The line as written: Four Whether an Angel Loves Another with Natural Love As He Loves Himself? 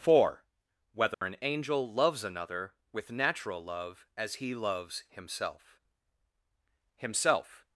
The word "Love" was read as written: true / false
true